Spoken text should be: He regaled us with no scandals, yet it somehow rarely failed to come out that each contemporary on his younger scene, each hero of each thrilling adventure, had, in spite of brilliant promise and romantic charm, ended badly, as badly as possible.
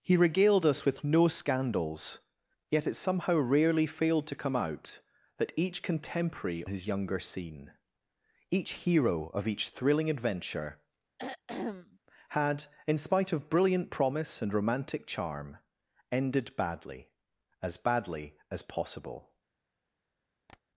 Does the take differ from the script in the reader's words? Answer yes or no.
yes